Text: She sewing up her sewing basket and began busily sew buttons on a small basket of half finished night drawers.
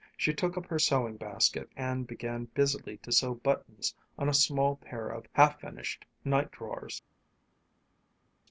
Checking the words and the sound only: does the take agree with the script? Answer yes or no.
no